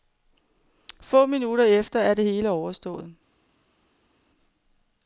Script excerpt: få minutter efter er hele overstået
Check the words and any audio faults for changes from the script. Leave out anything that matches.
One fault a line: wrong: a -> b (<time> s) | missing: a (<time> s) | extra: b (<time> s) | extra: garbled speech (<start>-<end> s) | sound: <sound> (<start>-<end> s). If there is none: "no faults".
extra: det (2.1 s)